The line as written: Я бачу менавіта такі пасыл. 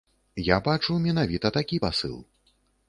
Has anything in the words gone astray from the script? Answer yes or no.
no